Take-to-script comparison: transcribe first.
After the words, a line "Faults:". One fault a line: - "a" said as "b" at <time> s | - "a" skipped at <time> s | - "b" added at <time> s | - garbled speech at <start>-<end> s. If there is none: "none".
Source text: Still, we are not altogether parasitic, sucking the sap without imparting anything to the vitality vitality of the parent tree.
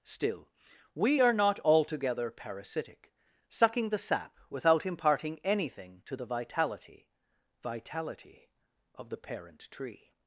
Still, we are not altogether parasitic, sucking the sap without imparting anything to the vitality vitality of the parent tree.
Faults:
none